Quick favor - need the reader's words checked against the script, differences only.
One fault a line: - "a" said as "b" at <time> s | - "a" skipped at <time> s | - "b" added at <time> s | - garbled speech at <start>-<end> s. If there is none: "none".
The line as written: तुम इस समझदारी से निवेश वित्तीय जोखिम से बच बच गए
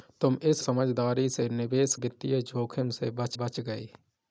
none